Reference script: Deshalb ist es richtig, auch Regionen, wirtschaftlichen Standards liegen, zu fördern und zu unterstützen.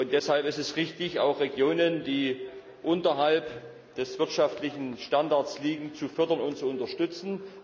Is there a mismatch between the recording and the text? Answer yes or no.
yes